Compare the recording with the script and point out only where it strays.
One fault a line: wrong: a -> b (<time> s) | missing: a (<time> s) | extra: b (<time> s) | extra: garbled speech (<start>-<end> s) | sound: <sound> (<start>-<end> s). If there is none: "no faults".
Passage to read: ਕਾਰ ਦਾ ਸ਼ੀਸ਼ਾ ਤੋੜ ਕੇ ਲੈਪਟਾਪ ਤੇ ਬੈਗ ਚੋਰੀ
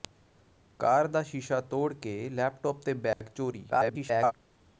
sound: dropout (3.1-3.2 s)
extra: garbled speech (3.7-4.3 s)